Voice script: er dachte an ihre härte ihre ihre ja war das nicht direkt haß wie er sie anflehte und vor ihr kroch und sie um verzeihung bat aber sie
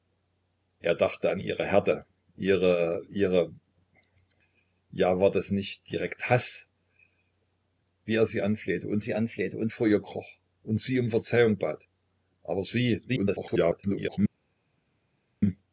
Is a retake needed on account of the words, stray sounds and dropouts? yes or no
yes